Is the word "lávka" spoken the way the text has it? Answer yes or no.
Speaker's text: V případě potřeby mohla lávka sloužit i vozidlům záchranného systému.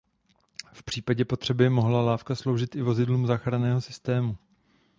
yes